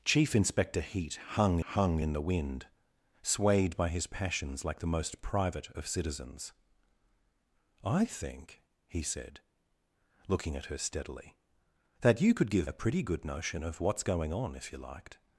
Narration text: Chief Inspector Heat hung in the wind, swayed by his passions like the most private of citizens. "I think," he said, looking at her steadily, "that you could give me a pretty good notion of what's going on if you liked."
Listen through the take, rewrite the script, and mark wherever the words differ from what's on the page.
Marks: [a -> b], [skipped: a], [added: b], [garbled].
Chief Inspector Heat hung [added: hung] in the wind, swayed by his passions like the most private of citizens. "I think," he said, looking at her steadily, "that you could give [skipped: me] a pretty good notion of what's going on if you liked."